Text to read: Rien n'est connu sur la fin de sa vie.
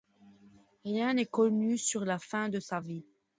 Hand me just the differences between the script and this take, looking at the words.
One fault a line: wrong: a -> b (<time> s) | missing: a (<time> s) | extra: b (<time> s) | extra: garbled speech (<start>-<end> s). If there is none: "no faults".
no faults